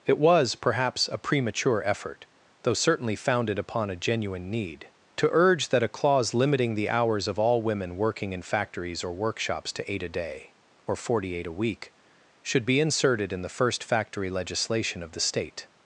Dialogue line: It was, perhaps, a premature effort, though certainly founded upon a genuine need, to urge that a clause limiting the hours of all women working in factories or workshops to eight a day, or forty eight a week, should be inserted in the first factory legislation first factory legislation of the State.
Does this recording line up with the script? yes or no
no